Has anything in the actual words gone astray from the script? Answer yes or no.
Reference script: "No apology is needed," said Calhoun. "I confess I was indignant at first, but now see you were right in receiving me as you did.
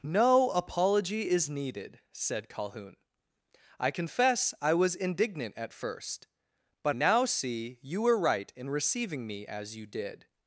no